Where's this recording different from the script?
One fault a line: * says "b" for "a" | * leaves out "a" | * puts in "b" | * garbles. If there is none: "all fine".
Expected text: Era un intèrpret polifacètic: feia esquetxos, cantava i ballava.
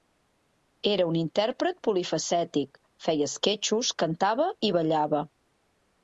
all fine